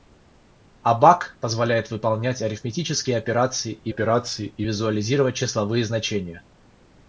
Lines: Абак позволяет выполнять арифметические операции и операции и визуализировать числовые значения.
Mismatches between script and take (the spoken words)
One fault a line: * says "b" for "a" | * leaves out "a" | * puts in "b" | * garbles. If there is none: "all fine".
all fine